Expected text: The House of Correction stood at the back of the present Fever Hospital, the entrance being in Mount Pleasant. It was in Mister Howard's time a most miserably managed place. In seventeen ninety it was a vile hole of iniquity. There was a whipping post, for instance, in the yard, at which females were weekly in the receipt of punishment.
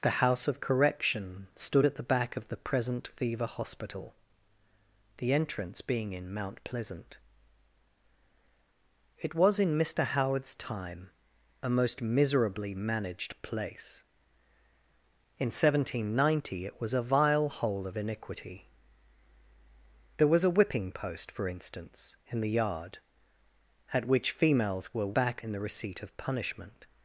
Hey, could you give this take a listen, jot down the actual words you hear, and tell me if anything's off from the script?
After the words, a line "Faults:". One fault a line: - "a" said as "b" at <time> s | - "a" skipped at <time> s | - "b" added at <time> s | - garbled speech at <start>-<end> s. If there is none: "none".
The House of Correction stood at the back of the present Fever Hospital, the entrance being in Mount Pleasant. It was in Mister Howard's time a most miserably managed place. In seventeen ninety it was a vile hole of iniquity. There was a whipping post, for instance, in the yard, at which females were back in the receipt of punishment.
Faults:
- "weekly" said as "back" at 25.1 s